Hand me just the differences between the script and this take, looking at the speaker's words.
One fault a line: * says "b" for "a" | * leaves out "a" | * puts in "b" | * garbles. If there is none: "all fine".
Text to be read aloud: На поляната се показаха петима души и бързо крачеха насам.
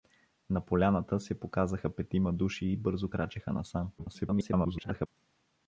* garbles